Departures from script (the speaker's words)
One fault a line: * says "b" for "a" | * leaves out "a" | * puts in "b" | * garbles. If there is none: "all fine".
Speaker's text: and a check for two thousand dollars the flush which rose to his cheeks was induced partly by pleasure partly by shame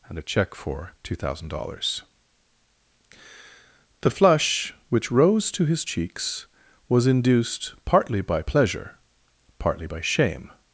all fine